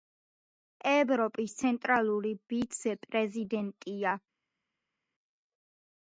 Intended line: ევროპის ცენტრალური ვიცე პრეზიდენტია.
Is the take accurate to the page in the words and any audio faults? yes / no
yes